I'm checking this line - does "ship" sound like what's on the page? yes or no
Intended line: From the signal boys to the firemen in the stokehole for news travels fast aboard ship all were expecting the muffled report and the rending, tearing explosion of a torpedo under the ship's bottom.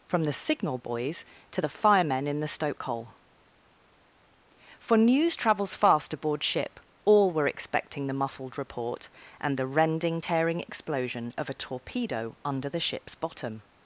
yes